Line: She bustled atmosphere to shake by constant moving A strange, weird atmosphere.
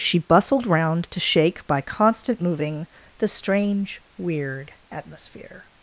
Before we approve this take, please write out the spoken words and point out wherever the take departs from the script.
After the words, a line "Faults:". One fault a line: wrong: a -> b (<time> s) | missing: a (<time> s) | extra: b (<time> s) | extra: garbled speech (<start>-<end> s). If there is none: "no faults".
She bustled round to shake by constant moving The strange, weird atmosphere.
Faults:
wrong: atmosphere -> round (0.7 s)
wrong: A -> The (3.2 s)